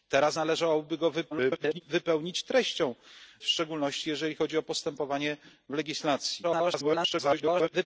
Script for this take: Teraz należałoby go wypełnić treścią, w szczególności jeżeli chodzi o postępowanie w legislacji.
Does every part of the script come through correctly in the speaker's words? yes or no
no